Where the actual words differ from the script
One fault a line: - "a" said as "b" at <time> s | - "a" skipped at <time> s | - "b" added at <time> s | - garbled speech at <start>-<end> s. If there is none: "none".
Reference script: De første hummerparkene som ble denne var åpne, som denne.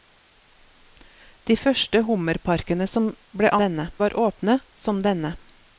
none